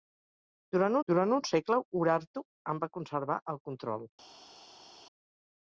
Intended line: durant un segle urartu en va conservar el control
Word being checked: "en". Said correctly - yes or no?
yes